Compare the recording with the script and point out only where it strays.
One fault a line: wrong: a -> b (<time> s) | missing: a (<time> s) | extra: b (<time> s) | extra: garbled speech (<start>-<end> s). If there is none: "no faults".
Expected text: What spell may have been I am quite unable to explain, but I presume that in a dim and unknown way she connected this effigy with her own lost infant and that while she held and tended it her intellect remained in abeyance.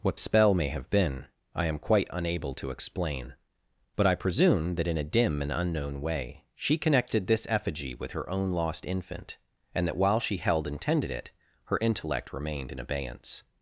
no faults